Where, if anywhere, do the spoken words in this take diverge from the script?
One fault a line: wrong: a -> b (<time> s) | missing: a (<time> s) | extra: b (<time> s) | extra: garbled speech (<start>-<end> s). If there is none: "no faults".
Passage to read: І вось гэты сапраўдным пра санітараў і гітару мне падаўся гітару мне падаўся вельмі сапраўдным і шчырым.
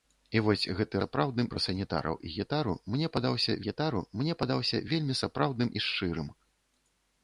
no faults